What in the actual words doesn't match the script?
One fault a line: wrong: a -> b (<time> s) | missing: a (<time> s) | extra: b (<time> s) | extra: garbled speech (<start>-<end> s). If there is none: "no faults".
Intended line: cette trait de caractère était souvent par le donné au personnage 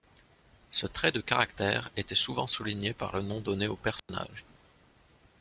wrong: cette -> ce (0.7 s)
extra: souligné (2.5 s)
extra: nom (3.2 s)